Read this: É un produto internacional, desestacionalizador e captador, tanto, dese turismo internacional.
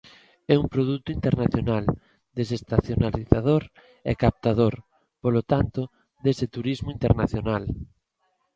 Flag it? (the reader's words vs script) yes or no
yes